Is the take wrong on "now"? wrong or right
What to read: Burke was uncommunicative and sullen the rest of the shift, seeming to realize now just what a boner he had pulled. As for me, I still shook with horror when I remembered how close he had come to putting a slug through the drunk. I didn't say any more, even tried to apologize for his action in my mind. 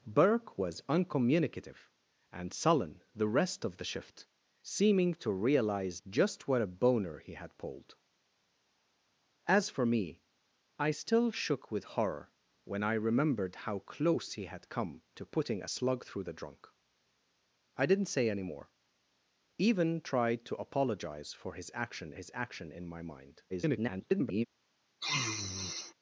wrong